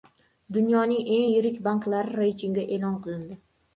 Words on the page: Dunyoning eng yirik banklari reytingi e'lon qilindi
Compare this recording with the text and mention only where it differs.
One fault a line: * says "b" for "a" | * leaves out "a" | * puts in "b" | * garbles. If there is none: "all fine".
all fine